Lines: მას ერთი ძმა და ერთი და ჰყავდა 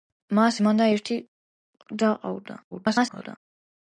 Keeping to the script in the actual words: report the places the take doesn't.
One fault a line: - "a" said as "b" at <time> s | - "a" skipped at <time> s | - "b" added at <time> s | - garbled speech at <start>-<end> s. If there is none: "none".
- "ერთი" skipped at 0.6 s
- garbled speech at 2.7-3.4 s